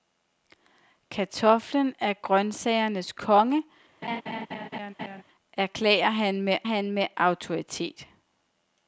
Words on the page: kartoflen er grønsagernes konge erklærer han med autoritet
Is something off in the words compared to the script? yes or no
yes